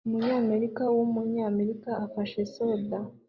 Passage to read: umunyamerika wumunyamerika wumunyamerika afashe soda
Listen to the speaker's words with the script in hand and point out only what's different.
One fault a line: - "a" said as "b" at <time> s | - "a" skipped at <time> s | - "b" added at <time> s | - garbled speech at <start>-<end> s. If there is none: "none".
- "wumunyamerika" skipped at 1.9 s